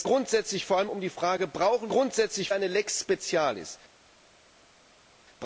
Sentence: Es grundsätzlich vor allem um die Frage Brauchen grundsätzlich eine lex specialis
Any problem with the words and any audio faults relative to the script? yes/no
no